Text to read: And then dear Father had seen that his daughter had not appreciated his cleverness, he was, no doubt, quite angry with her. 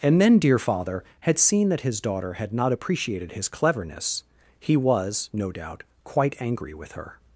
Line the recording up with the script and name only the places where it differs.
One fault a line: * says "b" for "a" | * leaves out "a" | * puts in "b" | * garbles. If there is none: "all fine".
all fine